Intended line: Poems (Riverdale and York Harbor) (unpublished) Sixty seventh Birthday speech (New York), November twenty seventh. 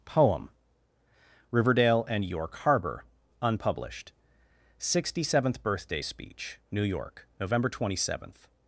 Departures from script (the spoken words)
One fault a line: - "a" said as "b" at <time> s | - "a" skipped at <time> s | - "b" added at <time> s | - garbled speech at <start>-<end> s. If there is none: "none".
- "Poems" said as "Poem" at 0.1 s